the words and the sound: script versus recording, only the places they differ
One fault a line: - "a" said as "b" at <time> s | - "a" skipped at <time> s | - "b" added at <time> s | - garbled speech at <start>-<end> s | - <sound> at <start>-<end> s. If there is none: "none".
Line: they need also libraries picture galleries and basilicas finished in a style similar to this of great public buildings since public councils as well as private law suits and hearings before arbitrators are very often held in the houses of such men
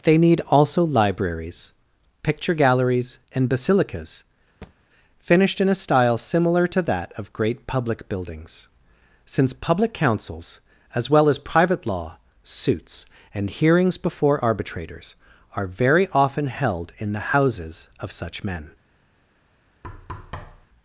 - thud at 4.6-4.8 s
- "this" said as "that" at 6.8 s
- thud at 19.8-20.7 s